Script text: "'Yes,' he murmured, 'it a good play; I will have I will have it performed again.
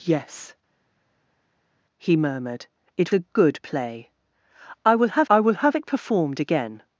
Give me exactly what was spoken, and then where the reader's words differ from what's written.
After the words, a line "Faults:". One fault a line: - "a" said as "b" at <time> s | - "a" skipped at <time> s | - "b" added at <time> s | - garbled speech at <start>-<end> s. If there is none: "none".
"'Yes,' he murmured, 'it a good play; I will have I will have it performed again.
Faults:
none